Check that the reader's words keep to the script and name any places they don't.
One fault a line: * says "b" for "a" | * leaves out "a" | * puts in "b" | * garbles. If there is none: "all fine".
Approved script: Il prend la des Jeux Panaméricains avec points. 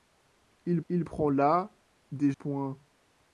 * puts in "il"
* leaves out "Jeux Panaméricains avec"